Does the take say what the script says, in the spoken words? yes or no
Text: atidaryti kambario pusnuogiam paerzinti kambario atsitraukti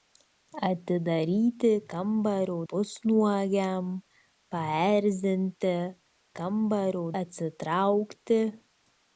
yes